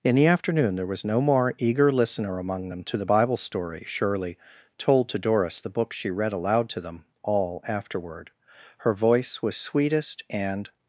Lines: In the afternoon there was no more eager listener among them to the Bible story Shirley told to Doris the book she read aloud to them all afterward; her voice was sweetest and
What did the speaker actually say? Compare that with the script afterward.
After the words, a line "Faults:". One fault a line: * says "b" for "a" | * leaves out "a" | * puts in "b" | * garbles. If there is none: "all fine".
In the afternoon there was no more eager listener among them to the Bible story Shirley told to Doris the book she read aloud to them all afterward; her voice was sweetest and
Faults:
all fine